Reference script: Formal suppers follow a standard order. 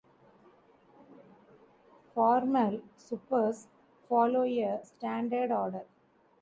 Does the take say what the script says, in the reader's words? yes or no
yes